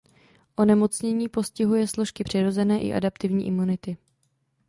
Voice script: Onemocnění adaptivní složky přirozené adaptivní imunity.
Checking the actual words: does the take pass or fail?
fail